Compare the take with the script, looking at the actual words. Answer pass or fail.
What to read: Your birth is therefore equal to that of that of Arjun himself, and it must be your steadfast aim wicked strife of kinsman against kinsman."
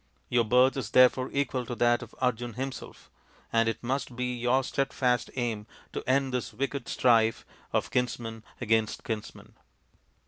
fail